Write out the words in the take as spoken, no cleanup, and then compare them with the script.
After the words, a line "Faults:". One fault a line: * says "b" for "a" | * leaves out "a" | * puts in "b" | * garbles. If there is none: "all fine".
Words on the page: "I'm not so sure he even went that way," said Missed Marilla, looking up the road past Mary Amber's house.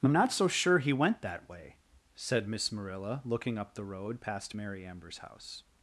"I'm not so sure he went that way," said Miss Marilla, looking up the road past Mary Amber's house.
Faults:
* leaves out "even"
* says "Miss" for "Missed"